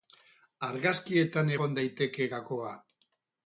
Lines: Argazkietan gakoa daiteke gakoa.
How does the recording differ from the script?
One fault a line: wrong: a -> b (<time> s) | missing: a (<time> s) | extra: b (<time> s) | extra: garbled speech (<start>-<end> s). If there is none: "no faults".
wrong: gakoa -> egon (1.6 s)